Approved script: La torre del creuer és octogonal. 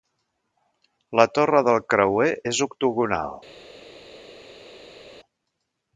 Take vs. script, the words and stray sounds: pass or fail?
pass